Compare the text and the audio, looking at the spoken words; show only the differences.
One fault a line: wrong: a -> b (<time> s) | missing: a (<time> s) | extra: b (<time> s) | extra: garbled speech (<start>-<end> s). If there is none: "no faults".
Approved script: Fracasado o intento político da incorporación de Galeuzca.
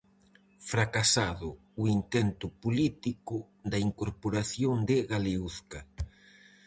no faults